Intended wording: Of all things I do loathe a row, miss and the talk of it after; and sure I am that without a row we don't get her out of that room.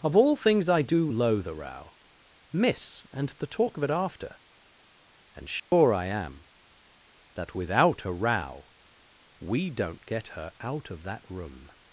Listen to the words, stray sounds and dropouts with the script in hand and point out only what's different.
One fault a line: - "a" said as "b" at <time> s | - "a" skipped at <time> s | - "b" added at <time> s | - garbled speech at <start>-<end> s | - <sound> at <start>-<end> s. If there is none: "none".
- dropout at 5.6-5.7 s